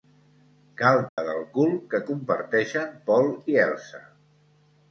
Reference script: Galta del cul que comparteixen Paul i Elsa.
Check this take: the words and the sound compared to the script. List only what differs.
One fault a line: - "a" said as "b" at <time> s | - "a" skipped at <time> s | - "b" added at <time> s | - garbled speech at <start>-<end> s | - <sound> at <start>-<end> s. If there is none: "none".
- dropout at 1.1-1.2 s